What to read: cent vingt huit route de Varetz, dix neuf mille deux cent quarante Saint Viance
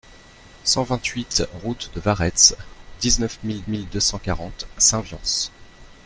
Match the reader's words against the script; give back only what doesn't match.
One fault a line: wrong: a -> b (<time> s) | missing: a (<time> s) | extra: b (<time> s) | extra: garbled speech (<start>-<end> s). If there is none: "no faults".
extra: mille (3.7 s)